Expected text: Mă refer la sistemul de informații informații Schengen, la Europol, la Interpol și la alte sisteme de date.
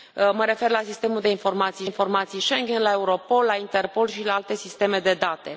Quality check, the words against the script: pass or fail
pass